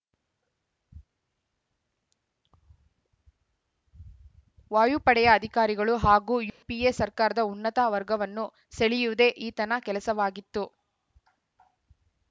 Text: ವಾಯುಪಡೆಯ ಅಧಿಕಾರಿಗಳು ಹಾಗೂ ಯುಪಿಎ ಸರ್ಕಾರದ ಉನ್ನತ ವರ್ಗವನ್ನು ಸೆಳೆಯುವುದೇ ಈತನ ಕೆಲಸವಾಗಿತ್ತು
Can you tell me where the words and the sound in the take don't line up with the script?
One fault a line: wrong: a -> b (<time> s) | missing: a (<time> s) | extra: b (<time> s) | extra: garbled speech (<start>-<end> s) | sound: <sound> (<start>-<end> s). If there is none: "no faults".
sound: dropout (6.5-6.6 s)